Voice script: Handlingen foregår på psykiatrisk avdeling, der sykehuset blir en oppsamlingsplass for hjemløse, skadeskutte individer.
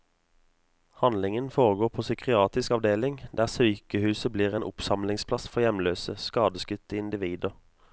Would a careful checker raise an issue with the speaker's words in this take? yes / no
no